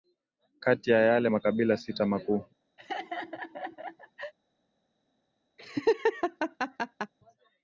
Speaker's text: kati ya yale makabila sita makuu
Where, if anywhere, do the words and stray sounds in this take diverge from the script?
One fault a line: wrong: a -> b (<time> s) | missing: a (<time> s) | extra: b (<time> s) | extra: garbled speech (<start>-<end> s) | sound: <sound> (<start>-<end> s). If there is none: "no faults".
sound: laugh (2.8-4.3 s)
sound: laugh (5.6-7.1 s)